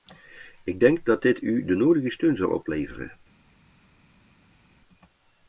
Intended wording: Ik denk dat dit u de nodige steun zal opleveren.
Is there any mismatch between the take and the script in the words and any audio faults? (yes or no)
no